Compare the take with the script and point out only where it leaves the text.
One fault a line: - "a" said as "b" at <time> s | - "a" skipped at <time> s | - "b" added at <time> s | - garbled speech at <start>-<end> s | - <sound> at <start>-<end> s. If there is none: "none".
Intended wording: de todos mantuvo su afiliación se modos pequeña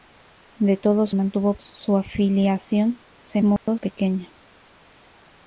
- dropout at 3.6-3.7 s